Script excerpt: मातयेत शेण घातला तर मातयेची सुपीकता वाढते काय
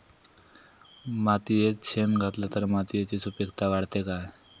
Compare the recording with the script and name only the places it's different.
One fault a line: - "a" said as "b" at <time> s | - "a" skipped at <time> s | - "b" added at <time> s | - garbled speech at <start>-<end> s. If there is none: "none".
none